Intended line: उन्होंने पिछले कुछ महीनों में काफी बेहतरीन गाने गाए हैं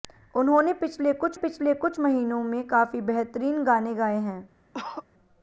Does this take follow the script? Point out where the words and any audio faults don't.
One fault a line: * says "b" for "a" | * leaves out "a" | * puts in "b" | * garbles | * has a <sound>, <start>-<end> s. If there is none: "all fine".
* puts in "पिछले कुछ"
* has a cough, 4.7-5.0 s